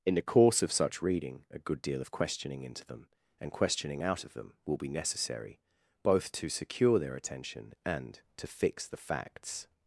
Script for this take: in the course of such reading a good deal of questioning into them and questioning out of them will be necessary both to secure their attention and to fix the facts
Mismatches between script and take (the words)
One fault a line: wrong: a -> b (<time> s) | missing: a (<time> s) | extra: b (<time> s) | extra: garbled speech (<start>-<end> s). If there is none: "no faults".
no faults